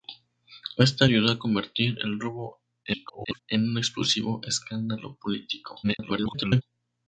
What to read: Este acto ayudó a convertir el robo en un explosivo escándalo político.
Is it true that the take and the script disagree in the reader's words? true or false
true